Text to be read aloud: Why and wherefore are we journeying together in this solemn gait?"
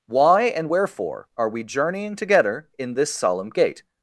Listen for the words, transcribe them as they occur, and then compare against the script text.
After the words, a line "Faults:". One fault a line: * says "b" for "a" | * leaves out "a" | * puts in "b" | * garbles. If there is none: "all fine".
Why and wherefore are we journeying together in this solemn gait?"
Faults:
all fine